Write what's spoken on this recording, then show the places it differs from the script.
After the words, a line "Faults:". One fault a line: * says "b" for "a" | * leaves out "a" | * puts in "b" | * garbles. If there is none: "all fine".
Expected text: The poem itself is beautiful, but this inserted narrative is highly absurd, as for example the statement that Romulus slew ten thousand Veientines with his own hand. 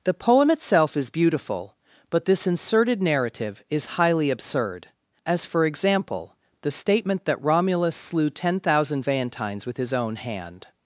The poem itself is beautiful, but this inserted narrative is highly absurd, as for example the statement that Romulus slew ten thousand Veientines with his own hand.
Faults:
all fine